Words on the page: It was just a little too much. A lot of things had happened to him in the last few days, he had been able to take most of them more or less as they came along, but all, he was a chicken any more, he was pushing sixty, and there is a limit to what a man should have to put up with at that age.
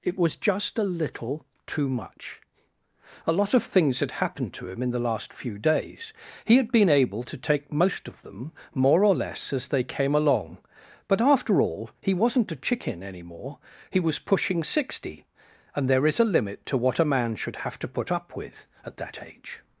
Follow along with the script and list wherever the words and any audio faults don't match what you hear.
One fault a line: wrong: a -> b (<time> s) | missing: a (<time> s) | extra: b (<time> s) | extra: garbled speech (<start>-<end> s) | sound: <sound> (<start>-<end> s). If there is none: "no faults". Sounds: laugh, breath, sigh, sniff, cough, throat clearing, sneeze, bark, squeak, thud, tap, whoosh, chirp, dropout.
extra: after (11.2 s)
wrong: was -> wasn't (12.2 s)